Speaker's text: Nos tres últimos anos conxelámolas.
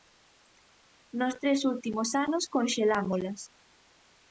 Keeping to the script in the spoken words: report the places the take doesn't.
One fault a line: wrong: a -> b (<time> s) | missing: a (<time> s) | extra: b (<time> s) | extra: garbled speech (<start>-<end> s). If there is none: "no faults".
no faults